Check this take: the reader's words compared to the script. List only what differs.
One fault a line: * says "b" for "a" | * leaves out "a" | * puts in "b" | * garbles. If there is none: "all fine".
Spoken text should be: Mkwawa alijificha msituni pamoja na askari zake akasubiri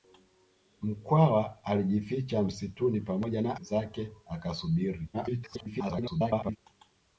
* leaves out "askari"
* garbles